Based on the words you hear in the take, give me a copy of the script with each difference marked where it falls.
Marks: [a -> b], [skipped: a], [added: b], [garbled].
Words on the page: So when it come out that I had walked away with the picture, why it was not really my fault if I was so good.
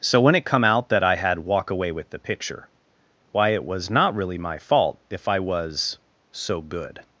So when it come out that I had [walked -> walk] away with the picture, why it was not really my fault if I was so good.